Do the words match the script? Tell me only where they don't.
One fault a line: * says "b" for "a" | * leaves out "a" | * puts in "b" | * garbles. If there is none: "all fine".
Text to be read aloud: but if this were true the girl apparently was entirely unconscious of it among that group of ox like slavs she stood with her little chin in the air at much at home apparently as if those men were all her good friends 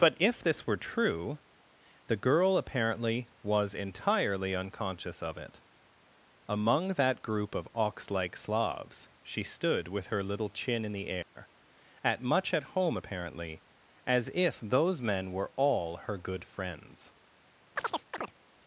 all fine